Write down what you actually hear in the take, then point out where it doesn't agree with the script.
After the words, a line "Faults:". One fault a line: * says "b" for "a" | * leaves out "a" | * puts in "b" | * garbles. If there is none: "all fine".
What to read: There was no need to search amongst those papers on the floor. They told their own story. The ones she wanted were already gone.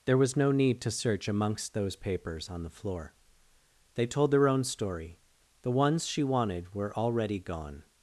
There was no need to search amongst those papers on the floor. They told their own story. The ones she wanted were already gone.
Faults:
all fine